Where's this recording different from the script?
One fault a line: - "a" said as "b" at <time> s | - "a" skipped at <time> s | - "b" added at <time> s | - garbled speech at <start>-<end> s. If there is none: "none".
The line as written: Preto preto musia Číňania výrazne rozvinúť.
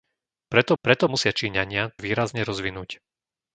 none